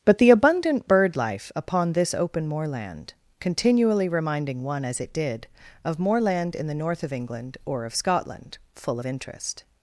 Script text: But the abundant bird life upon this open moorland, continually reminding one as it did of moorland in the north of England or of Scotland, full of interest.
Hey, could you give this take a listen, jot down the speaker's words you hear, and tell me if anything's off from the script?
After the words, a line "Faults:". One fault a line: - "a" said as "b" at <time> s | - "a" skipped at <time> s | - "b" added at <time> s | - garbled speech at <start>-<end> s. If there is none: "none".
But the abundant bird life upon this open moorland, continually reminding one as it did of moorland in the north of England or of Scotland, full of interest.
Faults:
none